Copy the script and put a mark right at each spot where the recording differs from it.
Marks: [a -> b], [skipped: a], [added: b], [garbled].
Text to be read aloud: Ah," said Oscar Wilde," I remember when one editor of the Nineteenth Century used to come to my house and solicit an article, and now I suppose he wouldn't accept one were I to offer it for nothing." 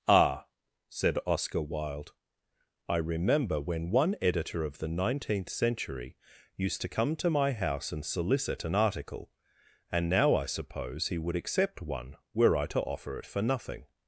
Ah," said Oscar Wilde," I remember when one editor of the Nineteenth Century used to come to my house and solicit an article, and now I suppose he [wouldn't -> would] accept one were I to offer it for nothing."